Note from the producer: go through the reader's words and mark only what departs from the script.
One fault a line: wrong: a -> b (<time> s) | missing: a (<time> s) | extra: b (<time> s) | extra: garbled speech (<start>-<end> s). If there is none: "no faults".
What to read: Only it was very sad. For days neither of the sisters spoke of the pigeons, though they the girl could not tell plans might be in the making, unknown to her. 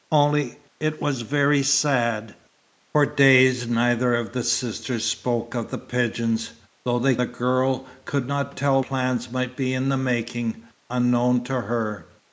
no faults